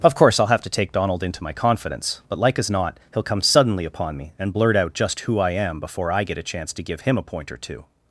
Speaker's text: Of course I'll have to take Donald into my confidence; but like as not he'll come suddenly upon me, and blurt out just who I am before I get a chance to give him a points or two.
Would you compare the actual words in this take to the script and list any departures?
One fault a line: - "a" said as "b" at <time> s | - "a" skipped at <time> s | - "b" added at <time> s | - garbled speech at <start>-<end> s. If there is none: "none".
- "points" said as "point" at 7.2 s